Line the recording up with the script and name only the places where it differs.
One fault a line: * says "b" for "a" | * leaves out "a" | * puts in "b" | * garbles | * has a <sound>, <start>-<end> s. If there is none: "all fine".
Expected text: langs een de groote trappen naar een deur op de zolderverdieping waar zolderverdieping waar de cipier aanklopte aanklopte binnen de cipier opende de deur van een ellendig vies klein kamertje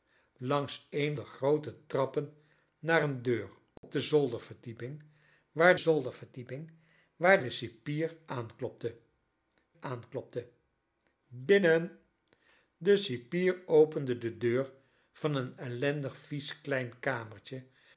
* has a dropout, 3.8-3.8 s